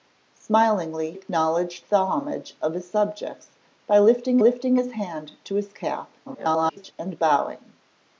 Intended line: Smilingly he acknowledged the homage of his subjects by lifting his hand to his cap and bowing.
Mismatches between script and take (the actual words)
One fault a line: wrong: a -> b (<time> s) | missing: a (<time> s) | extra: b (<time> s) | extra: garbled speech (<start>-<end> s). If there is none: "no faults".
missing: he (1.1 s)
extra: lifting (4.4 s)
extra: garbled speech (6.3-6.9 s)